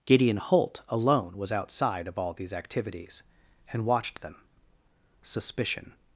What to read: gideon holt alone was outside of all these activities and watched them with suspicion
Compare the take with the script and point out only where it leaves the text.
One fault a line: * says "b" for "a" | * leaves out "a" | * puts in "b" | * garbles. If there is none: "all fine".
* leaves out "with"